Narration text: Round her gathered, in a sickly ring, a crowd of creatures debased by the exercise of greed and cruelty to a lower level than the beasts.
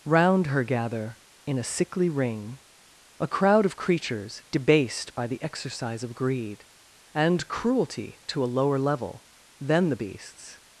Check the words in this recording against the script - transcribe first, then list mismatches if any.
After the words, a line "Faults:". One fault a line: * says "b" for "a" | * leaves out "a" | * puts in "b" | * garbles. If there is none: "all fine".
Round her gather, in a sickly ring, a crowd of creatures debased by the exercise of greed and cruelty to a lower level than the beasts.
Faults:
* says "gather" for "gathered"